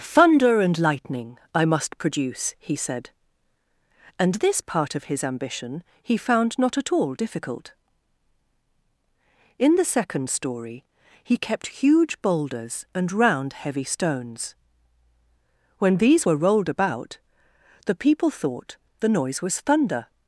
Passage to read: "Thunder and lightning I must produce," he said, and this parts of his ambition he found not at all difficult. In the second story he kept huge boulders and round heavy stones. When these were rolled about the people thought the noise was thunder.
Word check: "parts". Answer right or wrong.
wrong